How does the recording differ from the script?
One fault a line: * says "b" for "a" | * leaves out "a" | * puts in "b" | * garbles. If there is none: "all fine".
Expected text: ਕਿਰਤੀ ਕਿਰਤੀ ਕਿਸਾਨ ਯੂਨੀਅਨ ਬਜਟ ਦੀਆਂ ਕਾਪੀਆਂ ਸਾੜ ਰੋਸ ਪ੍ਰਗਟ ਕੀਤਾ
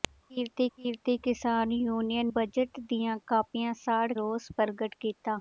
all fine